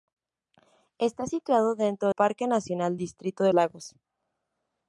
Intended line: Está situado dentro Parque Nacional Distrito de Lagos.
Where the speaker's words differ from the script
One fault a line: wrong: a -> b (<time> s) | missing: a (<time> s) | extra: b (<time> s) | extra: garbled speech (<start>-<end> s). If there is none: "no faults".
no faults